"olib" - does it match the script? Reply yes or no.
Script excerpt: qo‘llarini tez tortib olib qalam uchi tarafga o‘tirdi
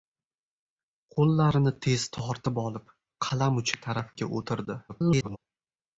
yes